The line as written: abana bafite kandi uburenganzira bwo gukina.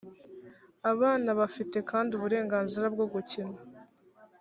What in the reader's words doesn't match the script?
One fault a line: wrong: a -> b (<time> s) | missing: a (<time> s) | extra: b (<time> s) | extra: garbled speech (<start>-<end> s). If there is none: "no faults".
no faults